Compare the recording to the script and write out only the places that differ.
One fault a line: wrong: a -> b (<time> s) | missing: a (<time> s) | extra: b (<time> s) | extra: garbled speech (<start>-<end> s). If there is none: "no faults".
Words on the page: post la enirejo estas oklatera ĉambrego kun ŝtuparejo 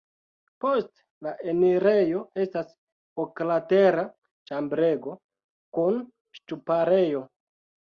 no faults